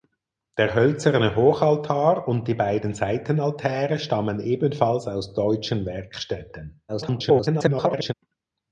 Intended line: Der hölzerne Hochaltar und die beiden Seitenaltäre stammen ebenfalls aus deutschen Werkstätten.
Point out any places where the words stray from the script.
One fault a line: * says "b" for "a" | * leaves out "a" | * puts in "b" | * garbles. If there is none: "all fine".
* garbles